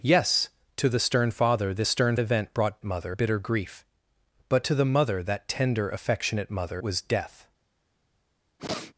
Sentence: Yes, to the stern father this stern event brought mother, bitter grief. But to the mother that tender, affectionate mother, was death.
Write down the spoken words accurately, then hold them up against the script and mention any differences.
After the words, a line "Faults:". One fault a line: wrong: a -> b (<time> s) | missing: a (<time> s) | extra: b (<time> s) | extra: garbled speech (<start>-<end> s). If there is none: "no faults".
Yes, to the stern father this stern event brought mother, bitter grief. But to the mother that tender, affectionate mother, was death.
Faults:
no faults